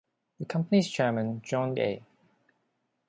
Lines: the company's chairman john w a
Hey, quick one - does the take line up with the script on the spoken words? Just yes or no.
no